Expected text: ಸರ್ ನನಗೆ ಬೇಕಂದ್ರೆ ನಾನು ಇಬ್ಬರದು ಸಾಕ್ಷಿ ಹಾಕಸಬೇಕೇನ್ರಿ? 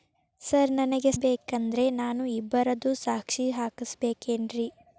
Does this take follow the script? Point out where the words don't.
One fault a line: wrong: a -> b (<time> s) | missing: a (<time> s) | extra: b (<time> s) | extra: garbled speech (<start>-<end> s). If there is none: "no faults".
no faults